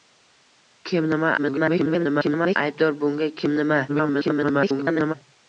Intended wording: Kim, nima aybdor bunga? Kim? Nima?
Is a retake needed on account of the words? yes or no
yes